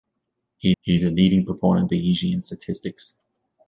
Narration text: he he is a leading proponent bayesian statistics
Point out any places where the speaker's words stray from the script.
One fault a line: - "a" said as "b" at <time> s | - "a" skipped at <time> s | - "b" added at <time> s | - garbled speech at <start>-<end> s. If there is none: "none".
none